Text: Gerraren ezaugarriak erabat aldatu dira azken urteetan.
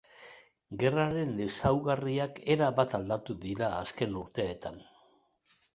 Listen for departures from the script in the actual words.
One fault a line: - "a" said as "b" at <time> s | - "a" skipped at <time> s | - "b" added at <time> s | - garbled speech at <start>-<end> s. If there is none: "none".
none